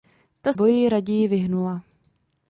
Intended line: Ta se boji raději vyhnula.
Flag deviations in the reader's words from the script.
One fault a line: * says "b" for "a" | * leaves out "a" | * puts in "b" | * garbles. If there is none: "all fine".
* leaves out "se"